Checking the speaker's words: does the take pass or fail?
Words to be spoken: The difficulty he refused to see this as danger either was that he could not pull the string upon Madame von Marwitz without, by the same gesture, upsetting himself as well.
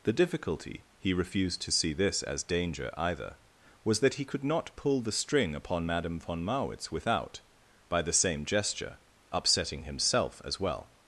pass